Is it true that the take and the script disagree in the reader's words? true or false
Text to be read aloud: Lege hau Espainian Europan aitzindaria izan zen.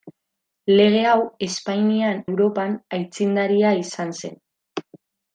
false